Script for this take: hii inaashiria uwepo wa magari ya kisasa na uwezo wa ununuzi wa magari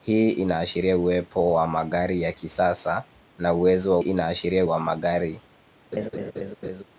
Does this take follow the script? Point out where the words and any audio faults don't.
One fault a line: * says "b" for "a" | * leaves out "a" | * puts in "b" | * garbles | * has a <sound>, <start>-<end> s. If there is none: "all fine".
* says "inaashiria" for "ununuzi"
* has a laugh, 5.9-6.8 s